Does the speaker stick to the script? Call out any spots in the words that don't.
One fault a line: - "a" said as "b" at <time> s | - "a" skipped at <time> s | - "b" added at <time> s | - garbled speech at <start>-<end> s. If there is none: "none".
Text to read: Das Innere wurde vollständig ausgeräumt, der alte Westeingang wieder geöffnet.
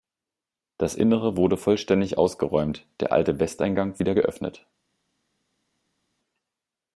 none